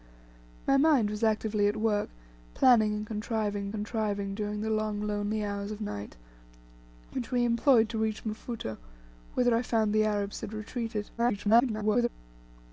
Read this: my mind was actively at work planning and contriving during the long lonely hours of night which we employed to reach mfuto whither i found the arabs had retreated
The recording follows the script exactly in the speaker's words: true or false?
false